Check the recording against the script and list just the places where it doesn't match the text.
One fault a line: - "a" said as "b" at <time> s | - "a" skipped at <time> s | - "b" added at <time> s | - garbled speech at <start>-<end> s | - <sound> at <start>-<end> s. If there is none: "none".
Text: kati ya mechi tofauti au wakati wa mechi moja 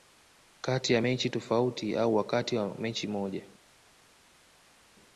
none